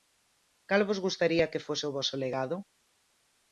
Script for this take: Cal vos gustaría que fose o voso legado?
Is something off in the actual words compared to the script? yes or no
no